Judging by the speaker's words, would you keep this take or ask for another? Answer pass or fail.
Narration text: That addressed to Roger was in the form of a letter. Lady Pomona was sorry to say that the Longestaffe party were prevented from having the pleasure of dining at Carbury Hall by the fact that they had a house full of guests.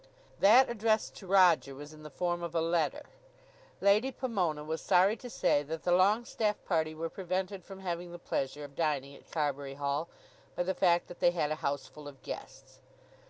pass